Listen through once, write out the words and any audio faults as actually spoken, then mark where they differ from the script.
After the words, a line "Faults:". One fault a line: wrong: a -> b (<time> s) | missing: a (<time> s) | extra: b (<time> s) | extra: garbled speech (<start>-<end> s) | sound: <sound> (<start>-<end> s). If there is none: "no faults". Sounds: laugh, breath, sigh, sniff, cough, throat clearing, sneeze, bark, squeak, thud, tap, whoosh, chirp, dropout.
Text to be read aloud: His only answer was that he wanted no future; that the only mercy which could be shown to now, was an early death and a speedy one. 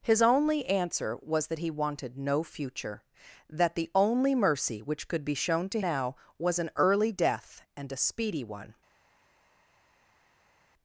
His only answer was that he wanted no future; that the only mercy which could be shown to now, was an early death and a speedy one.
Faults:
no faults